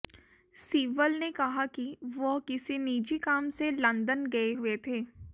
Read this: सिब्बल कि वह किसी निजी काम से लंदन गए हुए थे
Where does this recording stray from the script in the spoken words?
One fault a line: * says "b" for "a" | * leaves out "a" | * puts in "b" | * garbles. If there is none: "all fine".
* puts in "ने कहा"